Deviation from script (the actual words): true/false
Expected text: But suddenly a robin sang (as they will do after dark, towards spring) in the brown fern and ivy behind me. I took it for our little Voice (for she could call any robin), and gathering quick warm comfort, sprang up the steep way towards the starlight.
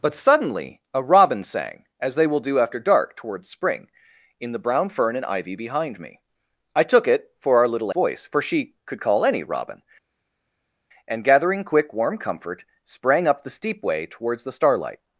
false